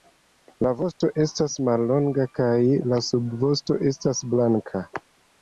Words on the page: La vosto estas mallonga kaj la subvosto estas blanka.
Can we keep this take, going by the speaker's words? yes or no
yes